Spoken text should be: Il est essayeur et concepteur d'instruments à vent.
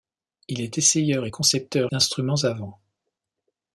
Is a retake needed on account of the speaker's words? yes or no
no